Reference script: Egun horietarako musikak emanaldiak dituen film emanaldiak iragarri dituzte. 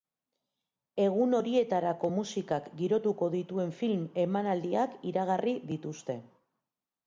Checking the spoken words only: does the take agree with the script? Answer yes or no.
no